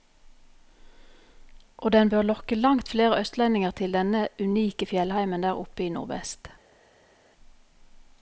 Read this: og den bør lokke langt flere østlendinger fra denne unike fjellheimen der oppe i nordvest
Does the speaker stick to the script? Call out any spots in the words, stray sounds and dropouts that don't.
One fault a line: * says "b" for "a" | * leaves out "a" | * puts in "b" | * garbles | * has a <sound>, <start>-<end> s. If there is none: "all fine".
* says "til" for "fra"